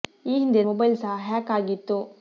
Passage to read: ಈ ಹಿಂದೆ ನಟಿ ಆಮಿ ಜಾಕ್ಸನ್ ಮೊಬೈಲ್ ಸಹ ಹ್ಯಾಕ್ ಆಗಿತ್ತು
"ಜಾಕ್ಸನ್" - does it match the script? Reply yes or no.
no